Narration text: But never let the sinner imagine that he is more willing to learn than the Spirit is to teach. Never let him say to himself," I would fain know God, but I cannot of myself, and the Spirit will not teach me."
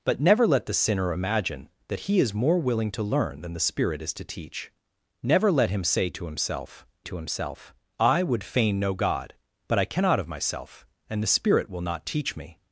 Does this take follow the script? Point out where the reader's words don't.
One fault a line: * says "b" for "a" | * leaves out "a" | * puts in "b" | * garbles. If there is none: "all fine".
* puts in "to himself"